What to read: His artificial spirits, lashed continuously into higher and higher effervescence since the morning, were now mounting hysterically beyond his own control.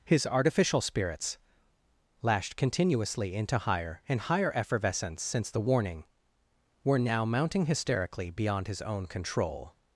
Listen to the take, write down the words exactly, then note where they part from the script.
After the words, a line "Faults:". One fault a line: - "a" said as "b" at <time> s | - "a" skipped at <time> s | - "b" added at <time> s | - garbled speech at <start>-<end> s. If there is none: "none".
His artificial spirits, lashed continuously into higher and higher effervescence since the warning, were now mounting hysterically beyond his own control.
Faults:
- "morning" said as "warning" at 5.6 s